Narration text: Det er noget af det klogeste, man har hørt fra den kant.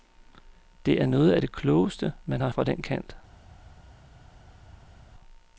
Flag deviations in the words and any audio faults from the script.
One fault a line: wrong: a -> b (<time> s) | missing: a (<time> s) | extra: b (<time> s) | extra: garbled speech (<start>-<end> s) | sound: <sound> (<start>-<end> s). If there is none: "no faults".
missing: hørt (2.5 s)